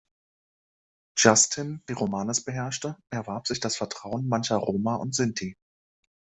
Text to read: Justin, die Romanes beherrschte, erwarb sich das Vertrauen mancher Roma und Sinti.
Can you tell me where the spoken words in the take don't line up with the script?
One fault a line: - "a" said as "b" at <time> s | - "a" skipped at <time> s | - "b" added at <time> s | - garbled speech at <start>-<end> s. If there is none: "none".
none